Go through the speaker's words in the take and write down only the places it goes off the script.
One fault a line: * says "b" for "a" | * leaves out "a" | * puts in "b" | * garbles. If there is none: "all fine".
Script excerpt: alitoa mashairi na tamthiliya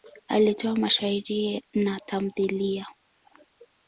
all fine